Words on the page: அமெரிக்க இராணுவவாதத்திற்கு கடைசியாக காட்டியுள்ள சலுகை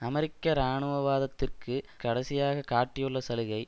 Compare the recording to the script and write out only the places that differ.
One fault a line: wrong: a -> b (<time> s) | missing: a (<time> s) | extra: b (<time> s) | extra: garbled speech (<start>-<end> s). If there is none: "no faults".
no faults